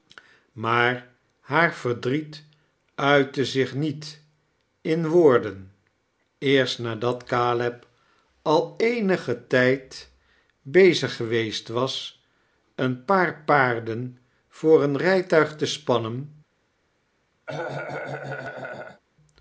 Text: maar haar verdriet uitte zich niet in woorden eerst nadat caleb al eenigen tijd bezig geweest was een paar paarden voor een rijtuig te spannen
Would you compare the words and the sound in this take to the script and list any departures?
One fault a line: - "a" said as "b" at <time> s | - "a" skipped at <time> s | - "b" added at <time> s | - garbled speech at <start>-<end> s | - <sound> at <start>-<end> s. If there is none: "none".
- cough at 17.5-19.0 s